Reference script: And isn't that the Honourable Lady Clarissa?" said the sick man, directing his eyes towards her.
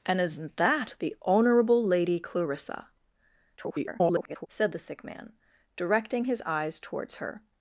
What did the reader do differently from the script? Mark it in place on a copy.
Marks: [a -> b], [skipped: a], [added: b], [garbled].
And isn't that the Honourable Lady Clarissa?" [garbled] said the sick man, directing his eyes towards her.